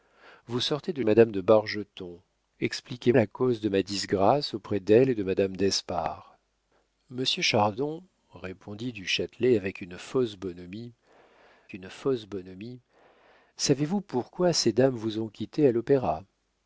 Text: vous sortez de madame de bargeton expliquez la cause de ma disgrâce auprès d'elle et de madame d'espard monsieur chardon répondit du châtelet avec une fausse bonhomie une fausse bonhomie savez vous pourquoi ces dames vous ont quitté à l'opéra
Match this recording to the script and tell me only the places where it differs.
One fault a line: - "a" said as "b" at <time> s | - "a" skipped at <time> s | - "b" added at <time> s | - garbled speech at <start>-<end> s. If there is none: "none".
none